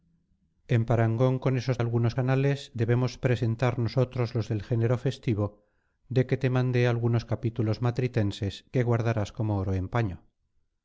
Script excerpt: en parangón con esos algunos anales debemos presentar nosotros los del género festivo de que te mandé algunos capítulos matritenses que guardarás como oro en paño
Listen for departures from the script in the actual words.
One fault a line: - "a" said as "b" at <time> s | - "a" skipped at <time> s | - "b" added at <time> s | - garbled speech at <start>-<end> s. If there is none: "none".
none